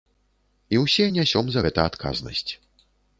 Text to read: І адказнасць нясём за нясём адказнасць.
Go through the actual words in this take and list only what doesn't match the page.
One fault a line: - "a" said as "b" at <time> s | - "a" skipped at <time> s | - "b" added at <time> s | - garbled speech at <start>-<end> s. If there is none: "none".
- "адказнасць" said as "ўсе" at 0.8 s
- "нясём" said as "гэта" at 1.6 s